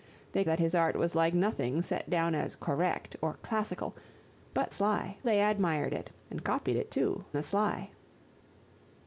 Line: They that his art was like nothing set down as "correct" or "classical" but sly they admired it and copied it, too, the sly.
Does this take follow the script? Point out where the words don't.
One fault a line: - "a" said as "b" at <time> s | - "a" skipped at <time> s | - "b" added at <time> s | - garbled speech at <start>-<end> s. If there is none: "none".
none